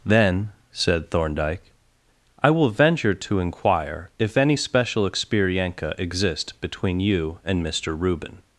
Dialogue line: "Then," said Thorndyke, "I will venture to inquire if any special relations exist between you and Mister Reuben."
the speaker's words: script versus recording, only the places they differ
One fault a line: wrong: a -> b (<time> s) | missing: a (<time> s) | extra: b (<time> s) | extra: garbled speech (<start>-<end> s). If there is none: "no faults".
wrong: relations -> experienca (5.1 s)